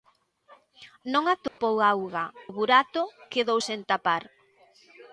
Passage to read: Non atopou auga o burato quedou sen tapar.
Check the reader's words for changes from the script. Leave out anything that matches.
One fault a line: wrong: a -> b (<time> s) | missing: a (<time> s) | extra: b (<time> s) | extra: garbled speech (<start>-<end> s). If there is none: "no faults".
no faults